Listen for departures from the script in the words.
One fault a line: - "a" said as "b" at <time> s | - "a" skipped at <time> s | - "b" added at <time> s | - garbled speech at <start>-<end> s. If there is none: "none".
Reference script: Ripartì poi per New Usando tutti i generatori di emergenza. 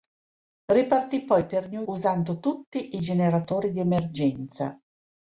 none